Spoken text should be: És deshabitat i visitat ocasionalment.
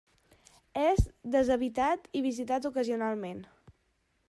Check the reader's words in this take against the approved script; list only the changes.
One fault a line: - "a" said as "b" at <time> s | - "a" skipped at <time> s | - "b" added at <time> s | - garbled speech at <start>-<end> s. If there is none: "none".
none